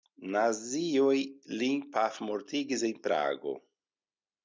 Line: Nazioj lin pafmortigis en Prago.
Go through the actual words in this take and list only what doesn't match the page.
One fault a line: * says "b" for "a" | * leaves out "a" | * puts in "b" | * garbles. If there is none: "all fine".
all fine